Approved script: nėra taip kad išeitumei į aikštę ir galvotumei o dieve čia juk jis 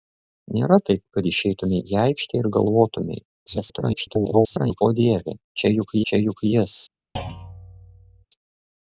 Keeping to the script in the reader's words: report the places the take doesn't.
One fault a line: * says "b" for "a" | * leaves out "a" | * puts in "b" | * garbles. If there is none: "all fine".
* garbles
* puts in "čia juk"